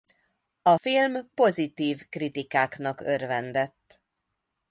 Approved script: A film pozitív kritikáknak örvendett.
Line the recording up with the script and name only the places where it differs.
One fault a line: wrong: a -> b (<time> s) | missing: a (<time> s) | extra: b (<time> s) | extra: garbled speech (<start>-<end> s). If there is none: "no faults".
no faults